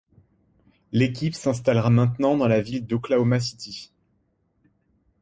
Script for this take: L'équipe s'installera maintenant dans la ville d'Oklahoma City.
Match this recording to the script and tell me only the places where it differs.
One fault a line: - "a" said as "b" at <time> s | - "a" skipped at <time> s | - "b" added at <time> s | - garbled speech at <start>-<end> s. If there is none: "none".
none